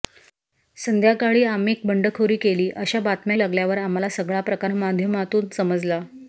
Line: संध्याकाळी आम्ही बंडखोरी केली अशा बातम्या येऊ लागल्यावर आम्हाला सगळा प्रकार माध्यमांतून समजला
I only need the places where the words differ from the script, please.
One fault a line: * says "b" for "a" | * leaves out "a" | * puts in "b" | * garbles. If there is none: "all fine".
* leaves out "येऊ"